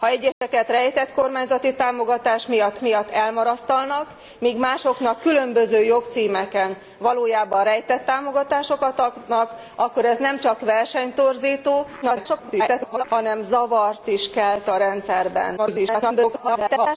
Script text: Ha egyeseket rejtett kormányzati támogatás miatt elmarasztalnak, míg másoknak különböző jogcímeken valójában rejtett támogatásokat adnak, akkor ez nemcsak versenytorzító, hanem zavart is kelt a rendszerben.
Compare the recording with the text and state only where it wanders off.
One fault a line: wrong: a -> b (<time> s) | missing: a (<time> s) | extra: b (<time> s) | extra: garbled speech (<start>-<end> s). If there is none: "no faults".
extra: miatt (2.8 s)
extra: garbled speech (12.0-13.0 s)
extra: garbled speech (15.6-17.0 s)